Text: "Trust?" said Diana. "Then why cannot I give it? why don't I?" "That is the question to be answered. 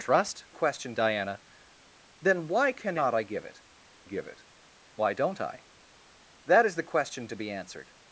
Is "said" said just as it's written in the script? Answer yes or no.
no